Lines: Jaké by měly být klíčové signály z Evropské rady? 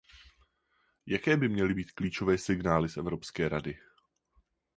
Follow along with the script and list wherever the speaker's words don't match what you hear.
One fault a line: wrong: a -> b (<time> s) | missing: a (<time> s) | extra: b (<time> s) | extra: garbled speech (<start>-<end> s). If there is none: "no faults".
no faults